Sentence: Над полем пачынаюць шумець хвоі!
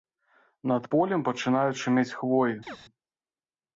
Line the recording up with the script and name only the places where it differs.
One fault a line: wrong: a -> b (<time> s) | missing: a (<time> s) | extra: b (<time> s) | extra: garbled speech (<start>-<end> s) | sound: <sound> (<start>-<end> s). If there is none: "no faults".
sound: chirp (2.7-2.8 s)